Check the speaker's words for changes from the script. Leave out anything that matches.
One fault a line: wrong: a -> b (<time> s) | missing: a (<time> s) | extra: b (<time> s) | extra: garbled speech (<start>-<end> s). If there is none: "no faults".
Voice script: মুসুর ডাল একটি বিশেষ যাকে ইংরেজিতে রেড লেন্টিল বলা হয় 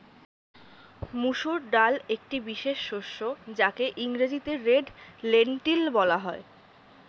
extra: শস্য (2.9 s)